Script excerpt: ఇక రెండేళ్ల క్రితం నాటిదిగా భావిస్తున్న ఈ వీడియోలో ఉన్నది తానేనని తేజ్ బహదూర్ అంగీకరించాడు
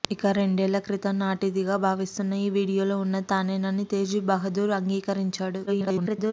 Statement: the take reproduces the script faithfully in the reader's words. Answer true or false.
false